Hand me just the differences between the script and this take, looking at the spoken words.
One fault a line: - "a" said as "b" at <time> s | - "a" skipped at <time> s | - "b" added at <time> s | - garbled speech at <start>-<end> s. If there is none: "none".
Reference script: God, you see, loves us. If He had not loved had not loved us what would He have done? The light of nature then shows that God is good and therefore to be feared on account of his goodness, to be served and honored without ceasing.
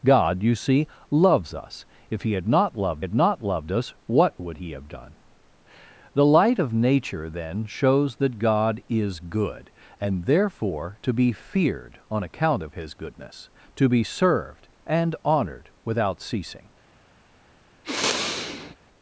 none